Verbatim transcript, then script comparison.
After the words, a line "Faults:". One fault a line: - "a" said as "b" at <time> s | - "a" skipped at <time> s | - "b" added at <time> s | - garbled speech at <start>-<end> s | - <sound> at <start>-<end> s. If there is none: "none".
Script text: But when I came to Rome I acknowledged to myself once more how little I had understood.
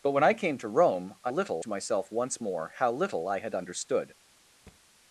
But when I came to Rome I little to myself once more how little I had understood.
Faults:
- "acknowledged" said as "little" at 1.3 s
- thud at 4.7-4.8 s